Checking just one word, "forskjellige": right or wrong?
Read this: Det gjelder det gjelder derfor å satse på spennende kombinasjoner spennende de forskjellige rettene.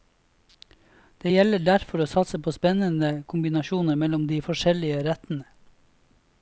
right